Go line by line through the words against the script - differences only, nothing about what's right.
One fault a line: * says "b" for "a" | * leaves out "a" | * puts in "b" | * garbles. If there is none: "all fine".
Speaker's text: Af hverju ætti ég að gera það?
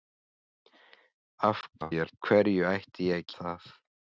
* garbles
* leaves out "gera"